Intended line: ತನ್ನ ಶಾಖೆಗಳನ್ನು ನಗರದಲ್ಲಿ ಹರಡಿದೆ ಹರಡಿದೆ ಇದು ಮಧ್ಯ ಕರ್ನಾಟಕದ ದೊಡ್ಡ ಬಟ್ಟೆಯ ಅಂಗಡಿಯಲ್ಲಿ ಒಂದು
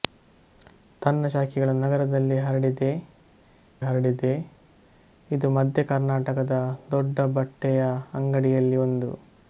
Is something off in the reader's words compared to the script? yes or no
no